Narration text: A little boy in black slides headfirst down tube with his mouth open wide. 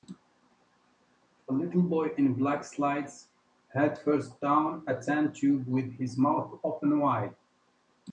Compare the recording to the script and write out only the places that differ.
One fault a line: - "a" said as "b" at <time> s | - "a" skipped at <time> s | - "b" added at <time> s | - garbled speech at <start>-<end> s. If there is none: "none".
- "a tan" added at 4.9 s